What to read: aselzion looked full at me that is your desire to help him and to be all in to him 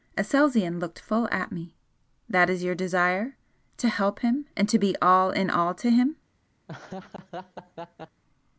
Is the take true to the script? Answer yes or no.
no